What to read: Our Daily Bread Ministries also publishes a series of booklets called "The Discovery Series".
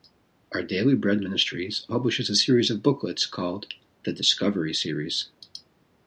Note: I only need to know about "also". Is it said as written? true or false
false